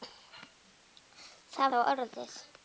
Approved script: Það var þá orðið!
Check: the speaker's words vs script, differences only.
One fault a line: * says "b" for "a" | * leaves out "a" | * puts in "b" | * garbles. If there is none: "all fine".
* leaves out "var"